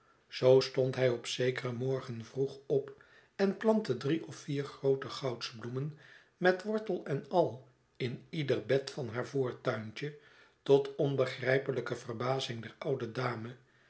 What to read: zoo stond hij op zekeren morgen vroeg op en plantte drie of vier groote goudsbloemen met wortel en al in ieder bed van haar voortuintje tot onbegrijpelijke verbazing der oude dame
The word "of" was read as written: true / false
true